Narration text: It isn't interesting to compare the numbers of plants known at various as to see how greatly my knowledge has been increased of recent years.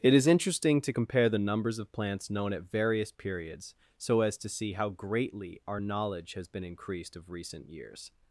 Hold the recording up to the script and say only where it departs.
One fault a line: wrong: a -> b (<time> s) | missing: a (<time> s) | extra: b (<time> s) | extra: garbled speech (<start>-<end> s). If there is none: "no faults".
wrong: isn't -> is (0.1 s)
extra: periods so (3.1 s)
wrong: my -> our (5.7 s)